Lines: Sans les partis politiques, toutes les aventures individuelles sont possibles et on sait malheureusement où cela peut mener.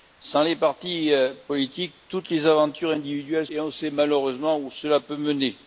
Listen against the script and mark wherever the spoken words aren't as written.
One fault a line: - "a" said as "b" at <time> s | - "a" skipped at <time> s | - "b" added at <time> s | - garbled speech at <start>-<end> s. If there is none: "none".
- "sont possibles" skipped at 3.5 s